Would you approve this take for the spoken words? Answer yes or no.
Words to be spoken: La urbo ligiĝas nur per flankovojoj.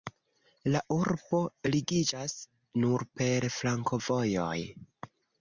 yes